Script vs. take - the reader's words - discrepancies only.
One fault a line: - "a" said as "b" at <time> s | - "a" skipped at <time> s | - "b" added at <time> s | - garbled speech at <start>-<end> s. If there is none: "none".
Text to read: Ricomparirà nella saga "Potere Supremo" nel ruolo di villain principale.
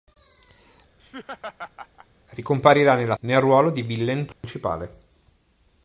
- "saga Potere Supremo" skipped at 3.2 s